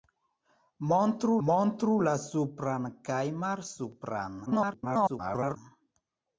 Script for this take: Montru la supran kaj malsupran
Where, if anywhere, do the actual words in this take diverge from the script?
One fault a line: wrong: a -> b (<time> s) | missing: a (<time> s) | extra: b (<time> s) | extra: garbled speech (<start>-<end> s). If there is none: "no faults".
extra: montru (1.5 s)
extra: garbled speech (4.5-5.6 s)